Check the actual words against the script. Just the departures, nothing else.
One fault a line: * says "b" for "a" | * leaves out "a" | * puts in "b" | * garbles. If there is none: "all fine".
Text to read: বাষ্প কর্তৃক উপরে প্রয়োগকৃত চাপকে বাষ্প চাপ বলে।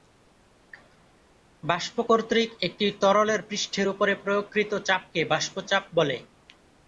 * puts in "একটি তরলের পৃষ্ঠের"